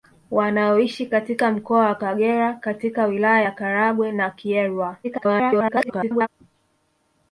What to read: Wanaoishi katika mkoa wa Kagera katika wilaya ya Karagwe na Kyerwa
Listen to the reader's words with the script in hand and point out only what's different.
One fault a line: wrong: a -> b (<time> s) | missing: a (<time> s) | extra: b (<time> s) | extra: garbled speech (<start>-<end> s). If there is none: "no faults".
extra: garbled speech (5.0-6.3 s)